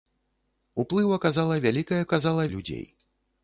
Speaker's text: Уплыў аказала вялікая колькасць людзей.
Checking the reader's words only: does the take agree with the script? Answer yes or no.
no